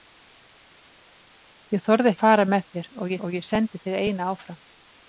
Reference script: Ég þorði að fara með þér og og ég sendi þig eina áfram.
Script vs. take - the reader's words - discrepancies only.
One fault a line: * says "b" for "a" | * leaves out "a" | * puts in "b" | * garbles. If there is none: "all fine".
all fine